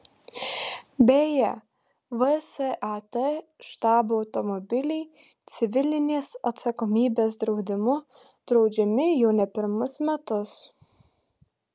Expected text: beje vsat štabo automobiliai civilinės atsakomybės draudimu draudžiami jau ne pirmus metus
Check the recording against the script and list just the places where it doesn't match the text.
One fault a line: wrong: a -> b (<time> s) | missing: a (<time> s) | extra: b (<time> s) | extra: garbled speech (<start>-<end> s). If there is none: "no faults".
no faults